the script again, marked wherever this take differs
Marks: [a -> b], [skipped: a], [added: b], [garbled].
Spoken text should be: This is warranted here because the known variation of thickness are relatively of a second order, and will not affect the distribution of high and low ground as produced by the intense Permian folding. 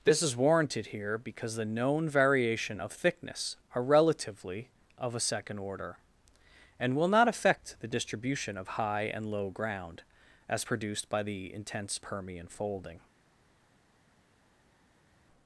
This is warranted here because the known variation of thickness are relatively of a second order, and will not affect the distribution of high and low ground as produced by the intense Permian folding.